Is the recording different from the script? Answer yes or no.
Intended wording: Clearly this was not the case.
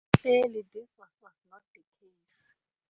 yes